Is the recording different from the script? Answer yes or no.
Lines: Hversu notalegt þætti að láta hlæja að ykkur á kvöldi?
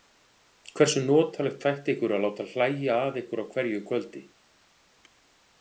yes